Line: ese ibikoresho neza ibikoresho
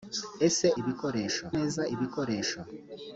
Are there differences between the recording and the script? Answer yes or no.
no